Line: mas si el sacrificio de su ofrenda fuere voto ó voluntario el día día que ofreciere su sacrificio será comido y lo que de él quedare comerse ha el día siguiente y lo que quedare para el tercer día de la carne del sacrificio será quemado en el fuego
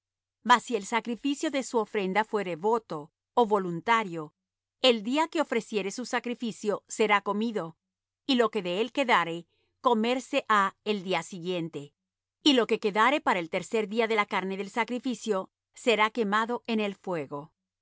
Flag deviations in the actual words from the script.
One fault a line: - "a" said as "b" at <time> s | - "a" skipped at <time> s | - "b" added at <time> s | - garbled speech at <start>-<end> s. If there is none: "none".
- "día" skipped at 5.3 s